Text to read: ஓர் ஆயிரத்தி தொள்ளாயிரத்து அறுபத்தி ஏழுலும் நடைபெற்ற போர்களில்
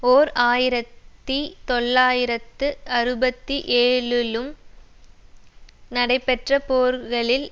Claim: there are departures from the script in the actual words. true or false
false